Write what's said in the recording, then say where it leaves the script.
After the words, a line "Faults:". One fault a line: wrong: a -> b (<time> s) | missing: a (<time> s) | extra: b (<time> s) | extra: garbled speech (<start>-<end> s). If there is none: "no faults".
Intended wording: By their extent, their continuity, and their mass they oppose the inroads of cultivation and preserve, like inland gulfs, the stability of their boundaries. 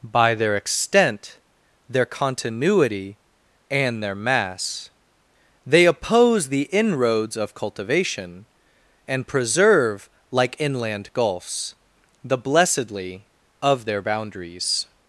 By their extent, their continuity, and their mass they oppose the inroads of cultivation and preserve, like inland gulfs, the blessedly of their boundaries.
Faults:
wrong: stability -> blessedly (12.4 s)